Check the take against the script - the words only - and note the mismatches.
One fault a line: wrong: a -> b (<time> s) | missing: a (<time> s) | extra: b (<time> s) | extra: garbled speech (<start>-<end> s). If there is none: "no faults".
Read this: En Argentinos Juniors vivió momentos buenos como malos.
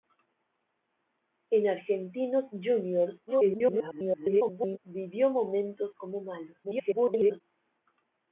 extra: garbled speech (3.3-4.8 s)
missing: buenos (5.9 s)
extra: garbled speech (6.6-7.4 s)